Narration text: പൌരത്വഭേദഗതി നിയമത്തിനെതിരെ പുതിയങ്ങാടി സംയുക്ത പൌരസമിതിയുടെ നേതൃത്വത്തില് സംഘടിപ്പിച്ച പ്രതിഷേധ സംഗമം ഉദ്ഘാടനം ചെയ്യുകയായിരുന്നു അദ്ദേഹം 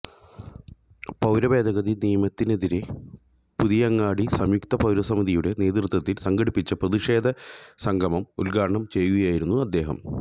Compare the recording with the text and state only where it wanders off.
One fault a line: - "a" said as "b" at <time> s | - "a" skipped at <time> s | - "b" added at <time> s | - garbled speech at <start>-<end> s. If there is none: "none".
none